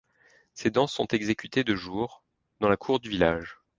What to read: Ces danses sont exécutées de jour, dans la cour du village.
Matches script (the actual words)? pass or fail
pass